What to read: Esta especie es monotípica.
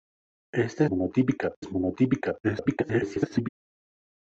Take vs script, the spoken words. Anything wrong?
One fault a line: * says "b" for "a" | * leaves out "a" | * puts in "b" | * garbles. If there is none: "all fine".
* says "monotípica" for "especie"
* garbles